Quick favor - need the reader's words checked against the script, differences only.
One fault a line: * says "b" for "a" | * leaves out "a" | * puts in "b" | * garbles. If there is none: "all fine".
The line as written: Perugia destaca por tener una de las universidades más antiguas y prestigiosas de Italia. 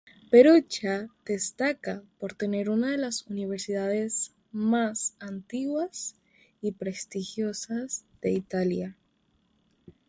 all fine